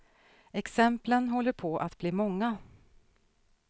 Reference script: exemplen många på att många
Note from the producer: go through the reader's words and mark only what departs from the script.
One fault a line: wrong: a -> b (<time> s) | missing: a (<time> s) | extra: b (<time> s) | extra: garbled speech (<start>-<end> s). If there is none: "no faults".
wrong: många -> håller (1.3 s)
extra: bli (2.0 s)